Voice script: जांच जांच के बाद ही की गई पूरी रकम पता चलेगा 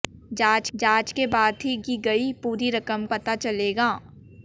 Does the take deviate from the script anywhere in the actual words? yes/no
no